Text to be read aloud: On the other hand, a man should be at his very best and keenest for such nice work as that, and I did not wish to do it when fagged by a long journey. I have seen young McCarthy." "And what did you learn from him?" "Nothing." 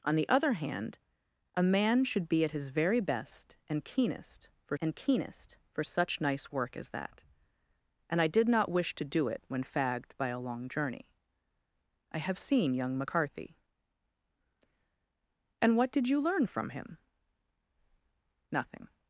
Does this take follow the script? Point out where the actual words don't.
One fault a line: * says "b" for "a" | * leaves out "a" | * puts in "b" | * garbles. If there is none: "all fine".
* puts in "and keenest for"